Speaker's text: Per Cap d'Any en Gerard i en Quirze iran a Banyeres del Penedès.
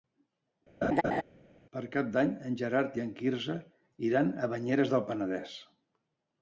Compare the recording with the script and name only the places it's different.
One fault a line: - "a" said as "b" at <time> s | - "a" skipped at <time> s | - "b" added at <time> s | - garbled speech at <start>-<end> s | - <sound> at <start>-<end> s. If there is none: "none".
- laugh at 0.8-1.2 s